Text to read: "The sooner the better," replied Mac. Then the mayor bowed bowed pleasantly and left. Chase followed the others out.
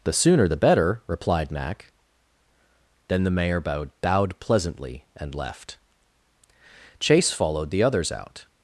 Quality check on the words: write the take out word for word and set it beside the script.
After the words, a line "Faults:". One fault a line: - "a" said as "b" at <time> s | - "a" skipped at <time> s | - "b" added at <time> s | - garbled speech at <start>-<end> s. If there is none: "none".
"The sooner the better," replied Mac. Then the mayor bowed bowed pleasantly and left. Chase followed the others out.
Faults:
none